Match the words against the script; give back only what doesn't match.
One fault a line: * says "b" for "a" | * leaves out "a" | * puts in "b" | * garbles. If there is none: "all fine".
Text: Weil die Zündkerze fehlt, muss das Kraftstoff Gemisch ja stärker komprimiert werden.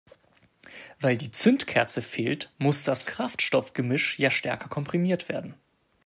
all fine